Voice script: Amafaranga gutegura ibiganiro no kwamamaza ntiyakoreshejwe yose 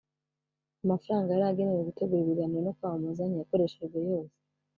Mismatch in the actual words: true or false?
true